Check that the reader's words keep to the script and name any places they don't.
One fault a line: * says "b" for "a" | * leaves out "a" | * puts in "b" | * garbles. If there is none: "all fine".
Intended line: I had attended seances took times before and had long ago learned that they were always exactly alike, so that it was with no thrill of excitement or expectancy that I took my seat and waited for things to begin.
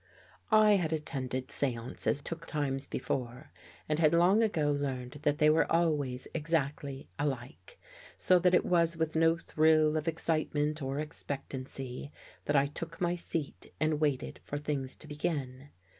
all fine